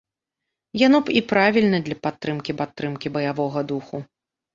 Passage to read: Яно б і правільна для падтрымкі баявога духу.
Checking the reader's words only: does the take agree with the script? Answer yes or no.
no